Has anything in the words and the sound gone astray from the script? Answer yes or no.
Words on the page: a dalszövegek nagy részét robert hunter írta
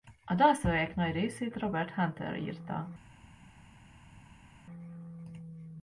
no